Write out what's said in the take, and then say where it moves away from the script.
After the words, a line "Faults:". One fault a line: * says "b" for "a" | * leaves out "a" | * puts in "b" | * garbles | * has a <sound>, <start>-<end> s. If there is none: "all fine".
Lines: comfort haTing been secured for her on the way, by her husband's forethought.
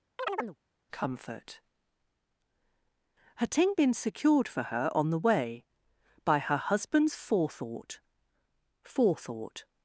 comfort haTing been secured for her on the way, by her husband's forethought forethought.
Faults:
* has a chirp, 0.2-0.6 s
* puts in "forethought"